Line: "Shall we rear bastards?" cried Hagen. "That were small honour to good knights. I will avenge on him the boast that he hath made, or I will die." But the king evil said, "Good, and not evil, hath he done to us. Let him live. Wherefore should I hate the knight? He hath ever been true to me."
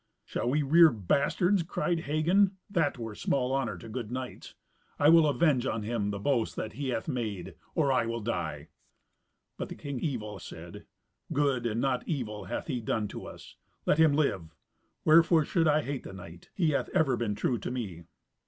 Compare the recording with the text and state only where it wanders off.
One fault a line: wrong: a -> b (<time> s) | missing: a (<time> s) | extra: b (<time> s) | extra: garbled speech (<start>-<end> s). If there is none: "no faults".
no faults